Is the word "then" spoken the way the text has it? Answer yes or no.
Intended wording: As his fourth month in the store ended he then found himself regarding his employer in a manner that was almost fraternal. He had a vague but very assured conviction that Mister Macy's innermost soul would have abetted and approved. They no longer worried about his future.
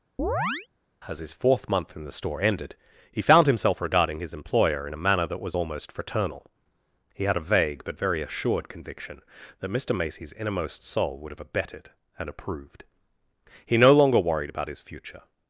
no